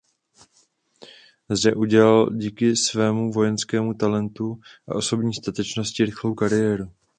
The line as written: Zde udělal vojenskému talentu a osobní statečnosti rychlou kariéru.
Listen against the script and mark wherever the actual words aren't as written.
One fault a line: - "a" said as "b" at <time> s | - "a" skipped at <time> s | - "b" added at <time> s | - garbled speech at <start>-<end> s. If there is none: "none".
- "díky svému" added at 2.3 s